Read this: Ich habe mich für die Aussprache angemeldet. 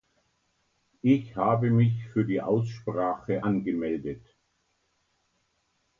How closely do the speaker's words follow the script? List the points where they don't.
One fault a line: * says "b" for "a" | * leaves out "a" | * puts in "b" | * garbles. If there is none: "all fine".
all fine